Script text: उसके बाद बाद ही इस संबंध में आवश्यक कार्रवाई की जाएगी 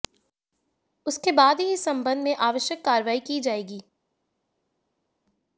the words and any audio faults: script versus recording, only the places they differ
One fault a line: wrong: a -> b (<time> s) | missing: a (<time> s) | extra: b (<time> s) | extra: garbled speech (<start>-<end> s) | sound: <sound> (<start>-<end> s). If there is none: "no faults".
missing: बाद (1.6 s)